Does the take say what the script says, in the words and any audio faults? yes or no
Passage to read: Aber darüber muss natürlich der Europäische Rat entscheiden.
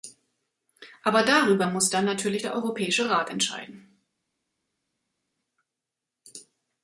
no